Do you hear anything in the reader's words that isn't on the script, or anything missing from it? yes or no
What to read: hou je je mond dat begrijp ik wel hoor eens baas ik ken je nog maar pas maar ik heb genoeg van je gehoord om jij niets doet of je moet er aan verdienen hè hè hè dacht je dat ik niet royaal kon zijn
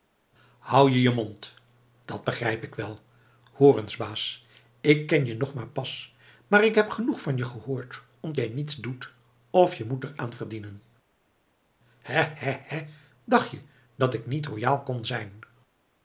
no